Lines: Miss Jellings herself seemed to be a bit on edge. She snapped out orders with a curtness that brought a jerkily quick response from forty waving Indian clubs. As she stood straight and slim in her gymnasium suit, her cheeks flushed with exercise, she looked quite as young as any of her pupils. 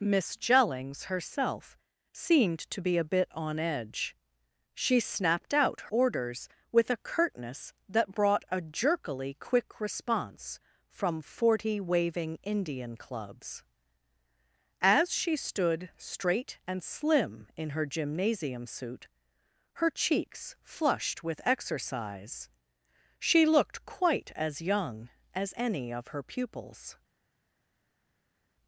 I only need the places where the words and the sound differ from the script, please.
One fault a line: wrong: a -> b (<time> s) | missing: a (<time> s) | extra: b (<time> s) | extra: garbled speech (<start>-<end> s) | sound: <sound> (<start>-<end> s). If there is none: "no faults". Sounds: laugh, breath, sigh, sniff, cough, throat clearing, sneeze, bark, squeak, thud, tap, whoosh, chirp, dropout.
no faults